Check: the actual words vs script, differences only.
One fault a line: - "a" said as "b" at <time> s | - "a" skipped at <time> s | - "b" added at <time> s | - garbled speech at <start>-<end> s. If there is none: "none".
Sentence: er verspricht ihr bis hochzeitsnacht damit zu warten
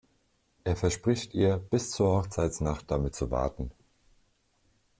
- "zur" added at 1.9 s